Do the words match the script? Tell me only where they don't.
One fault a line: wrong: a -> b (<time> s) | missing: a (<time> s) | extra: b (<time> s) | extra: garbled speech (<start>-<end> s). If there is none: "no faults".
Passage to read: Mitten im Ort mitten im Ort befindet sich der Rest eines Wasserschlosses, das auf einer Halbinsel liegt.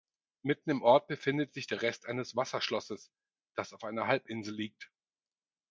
missing: mitten im Ort (1.1 s)